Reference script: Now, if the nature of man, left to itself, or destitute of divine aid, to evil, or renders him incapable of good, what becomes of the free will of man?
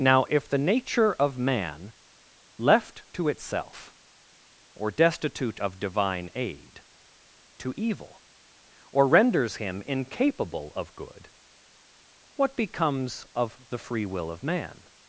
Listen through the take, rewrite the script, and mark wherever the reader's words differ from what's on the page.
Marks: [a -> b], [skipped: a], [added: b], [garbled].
Now, if the nature of man, left to itself, or destitute of divine aid, to evil, or renders him incapable of good, what becomes of the free will of man?